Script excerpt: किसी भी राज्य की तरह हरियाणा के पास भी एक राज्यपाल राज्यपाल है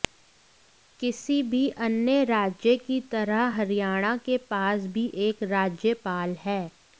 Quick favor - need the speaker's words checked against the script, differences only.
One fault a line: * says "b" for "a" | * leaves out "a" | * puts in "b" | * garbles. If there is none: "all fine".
* puts in "अन्य"
* leaves out "राज्यपाल"